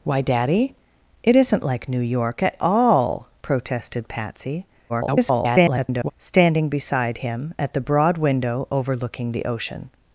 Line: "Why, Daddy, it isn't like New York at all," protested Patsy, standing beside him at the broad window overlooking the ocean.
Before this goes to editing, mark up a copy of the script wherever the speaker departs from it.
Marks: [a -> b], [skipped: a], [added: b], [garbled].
"Why, Daddy, it isn't like New York at all," protested Patsy, [garbled] standing beside him at the broad window overlooking the ocean.